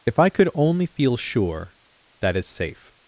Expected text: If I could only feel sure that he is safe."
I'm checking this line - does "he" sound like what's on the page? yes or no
no